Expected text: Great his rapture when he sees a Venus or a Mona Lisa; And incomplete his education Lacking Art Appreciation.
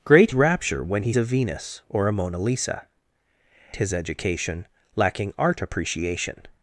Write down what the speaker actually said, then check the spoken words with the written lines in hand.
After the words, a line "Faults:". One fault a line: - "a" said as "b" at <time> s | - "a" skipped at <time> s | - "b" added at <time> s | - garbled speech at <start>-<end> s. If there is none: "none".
Great rapture when he a Venus or a Mona Lisa; His education Lacking Art Appreciation.
Faults:
- "his" skipped at 0.3 s
- "sees" skipped at 1.1 s
- "And incomplete" skipped at 2.9 s